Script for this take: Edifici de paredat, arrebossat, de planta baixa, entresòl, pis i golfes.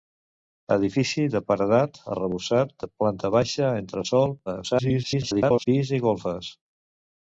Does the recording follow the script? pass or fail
fail